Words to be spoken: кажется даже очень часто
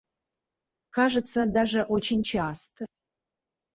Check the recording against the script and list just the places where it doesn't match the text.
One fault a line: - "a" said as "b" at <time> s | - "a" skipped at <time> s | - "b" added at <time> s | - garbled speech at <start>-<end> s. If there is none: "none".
none